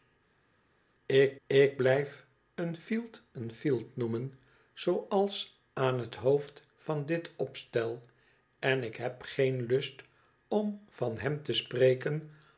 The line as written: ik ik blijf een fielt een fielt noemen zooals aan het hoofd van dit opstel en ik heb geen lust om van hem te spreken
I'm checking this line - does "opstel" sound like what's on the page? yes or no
yes